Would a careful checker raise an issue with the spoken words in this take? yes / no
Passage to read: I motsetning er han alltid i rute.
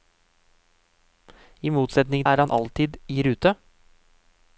no